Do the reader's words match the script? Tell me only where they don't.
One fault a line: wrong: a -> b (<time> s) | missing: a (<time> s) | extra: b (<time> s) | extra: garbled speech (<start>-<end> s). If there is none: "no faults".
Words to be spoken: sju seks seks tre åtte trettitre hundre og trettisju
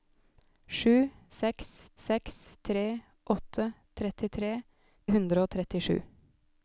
no faults